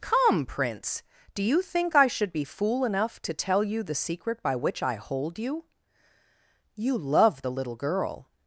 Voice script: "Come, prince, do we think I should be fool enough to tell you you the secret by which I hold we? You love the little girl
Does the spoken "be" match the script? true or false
true